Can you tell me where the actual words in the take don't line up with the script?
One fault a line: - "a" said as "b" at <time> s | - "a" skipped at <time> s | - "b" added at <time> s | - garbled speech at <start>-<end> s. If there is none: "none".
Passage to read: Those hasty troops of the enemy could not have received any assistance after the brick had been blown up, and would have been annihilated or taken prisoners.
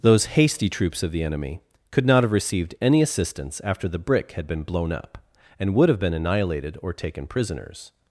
none